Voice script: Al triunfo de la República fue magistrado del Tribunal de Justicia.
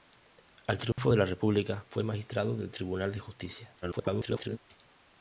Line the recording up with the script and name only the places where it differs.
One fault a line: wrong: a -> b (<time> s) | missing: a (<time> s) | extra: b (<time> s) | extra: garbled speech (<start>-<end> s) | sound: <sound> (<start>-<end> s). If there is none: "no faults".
sound: dropout (0.9-1.0 s)
extra: garbled speech (3.8-4.6 s)